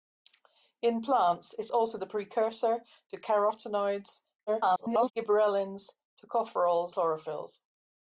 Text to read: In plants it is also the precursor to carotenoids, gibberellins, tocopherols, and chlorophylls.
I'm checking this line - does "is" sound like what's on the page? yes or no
no